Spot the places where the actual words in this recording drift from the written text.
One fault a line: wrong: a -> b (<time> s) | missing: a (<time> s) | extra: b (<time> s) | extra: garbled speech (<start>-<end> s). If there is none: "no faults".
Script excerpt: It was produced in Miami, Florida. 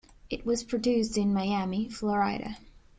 no faults